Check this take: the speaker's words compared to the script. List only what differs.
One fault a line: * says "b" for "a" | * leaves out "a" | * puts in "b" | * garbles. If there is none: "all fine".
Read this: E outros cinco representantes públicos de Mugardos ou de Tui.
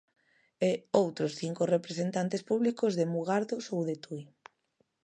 all fine